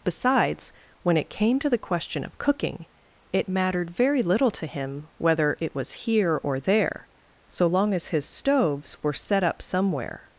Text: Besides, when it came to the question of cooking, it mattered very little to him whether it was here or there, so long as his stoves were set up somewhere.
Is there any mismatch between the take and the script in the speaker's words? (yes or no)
no